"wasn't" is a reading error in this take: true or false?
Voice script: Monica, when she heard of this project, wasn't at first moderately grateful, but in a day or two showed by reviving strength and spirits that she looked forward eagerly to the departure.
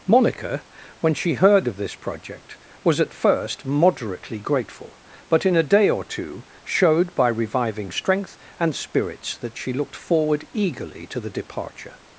true